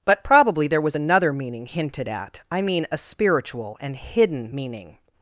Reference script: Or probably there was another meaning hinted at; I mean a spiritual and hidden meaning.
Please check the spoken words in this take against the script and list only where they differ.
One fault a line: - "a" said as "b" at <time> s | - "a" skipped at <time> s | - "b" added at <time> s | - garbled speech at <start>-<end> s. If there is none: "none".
- "Or" said as "But" at 0.0 s